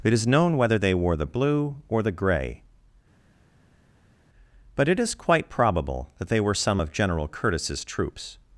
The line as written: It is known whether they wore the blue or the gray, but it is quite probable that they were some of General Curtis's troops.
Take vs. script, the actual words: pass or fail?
pass